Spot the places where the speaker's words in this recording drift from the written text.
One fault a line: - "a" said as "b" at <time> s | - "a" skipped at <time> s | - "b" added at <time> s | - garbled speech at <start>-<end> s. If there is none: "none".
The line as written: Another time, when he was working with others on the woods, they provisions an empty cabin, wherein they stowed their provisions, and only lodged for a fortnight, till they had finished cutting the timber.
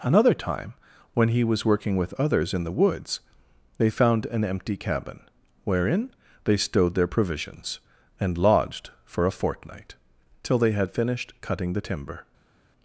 - "on" said as "in" at 2.5 s
- "provisions" said as "found" at 3.9 s
- "only" skipped at 8.4 s